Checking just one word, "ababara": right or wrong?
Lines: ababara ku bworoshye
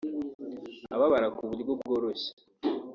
right